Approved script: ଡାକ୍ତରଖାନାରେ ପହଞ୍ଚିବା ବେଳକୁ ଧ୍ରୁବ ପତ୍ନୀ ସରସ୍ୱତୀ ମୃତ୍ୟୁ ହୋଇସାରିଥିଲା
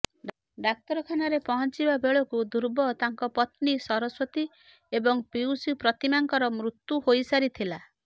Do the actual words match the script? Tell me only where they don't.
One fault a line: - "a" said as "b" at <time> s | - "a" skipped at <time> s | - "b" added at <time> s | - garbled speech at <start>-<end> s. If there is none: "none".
- "ତାଙ୍କ" added at 3.0 s
- "ଏବଂ ପିଉସୀ ପ୍ରତିମାଙ୍କର" added at 4.9 s